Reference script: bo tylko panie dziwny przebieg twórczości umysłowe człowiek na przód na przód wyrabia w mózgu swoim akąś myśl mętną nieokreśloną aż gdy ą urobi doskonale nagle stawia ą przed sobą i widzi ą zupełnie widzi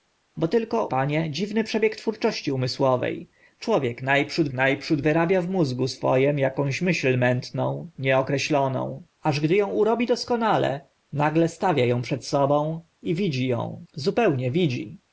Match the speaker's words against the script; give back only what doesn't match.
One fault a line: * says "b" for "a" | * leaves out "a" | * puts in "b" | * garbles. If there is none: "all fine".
all fine